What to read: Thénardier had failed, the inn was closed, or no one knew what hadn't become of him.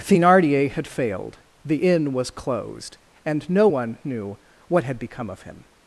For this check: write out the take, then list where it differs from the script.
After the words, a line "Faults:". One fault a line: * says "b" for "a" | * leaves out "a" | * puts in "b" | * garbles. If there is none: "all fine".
Thénardier had failed, the inn was closed, and no one knew what had become of him.
Faults:
* says "and" for "or"
* says "had" for "hadn't"